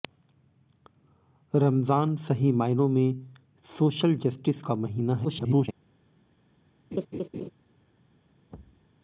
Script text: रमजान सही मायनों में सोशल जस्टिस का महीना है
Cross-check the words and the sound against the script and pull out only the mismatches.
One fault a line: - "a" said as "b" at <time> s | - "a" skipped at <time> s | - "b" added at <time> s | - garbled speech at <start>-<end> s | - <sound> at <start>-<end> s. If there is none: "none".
- garbled speech at 5.2-5.7 s
- laugh at 6.9-7.5 s
- thud at 8.5-8.9 s